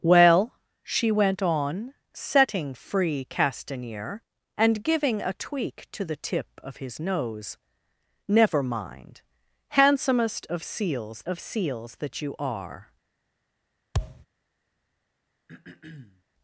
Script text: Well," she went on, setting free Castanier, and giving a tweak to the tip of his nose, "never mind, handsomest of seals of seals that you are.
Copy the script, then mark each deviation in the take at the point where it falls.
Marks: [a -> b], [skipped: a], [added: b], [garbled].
Well," she went on, setting free Castanier, and giving a tweak to the tip of his nose, "never mind, handsomest of seals of seals that you are.